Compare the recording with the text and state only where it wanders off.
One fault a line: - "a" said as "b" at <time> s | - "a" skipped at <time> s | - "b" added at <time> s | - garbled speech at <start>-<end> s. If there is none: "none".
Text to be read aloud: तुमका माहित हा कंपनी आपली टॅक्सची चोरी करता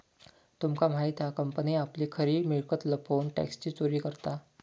- "खरी मिळकत लपवून" added at 2.1 s